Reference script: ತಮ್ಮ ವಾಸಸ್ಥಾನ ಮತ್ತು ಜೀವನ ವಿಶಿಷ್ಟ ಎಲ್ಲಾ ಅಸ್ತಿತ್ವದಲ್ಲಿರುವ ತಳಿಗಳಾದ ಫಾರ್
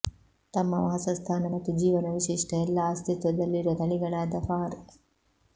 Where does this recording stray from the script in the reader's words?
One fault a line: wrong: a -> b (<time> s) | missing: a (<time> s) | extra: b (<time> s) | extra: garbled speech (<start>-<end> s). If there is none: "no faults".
no faults